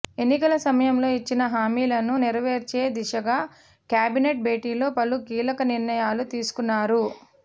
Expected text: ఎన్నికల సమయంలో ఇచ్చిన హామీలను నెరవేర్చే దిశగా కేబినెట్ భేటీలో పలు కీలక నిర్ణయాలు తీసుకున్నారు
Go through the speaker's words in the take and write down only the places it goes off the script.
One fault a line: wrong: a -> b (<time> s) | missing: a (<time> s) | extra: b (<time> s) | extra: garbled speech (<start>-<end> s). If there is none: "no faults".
no faults